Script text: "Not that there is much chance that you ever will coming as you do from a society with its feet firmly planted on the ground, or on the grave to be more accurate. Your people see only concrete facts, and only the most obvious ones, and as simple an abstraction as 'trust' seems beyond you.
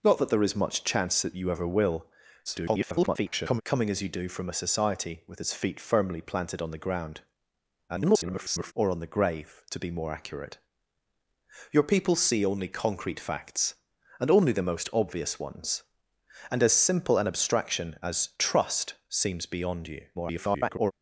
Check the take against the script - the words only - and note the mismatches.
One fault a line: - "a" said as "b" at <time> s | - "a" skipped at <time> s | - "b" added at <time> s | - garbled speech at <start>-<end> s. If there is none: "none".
- garbled speech at 2.5-3.6 s
- garbled speech at 7.9-8.7 s
- garbled speech at 20.1-20.9 s